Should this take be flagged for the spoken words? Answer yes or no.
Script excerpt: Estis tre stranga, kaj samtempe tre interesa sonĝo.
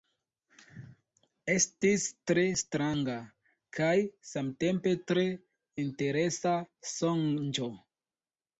no